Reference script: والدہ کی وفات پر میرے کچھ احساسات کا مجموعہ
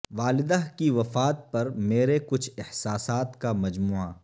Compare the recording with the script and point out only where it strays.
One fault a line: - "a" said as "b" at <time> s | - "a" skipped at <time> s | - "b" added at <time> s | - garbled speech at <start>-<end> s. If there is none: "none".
none